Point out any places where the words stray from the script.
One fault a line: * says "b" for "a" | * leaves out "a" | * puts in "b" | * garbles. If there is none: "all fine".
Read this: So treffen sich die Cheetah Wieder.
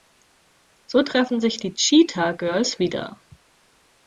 * puts in "Girls"